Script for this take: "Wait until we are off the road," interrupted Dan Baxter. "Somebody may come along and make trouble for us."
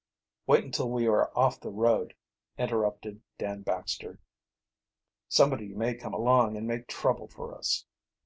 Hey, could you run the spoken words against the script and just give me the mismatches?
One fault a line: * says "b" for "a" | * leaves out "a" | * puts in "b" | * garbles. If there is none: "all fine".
all fine